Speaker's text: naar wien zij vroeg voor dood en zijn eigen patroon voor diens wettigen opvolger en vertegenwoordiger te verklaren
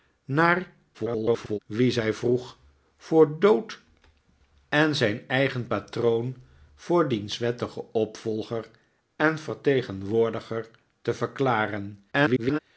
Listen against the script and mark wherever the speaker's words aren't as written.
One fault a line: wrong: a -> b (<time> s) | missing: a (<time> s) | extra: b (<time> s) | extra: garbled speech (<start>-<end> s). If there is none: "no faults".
extra: garbled speech (0.9-1.6 s)
extra: garbled speech (12.1-12.6 s)